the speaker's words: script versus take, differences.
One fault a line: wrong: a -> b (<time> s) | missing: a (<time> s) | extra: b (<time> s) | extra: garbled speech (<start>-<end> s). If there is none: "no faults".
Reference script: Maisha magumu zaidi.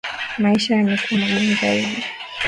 extra: yamekuwa (0.8 s)